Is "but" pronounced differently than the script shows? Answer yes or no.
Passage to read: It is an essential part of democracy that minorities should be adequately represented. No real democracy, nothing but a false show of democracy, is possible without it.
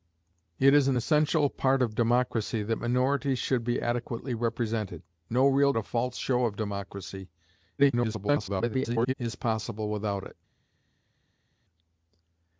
yes